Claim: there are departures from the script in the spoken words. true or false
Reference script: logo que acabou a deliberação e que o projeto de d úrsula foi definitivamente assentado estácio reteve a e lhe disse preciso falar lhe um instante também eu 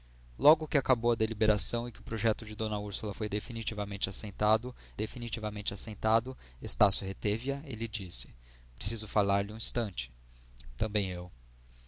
true